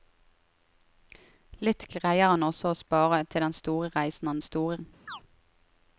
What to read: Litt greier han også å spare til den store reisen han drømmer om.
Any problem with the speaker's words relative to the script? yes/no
yes